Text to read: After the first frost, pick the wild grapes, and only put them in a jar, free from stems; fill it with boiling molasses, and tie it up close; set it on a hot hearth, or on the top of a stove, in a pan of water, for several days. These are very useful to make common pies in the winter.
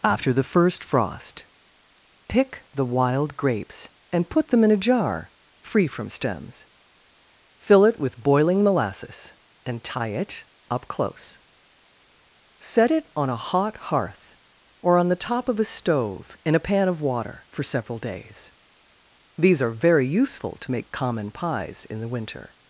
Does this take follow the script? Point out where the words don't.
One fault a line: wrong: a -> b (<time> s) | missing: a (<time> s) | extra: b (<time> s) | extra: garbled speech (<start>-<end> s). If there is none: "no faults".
missing: only (4.3 s)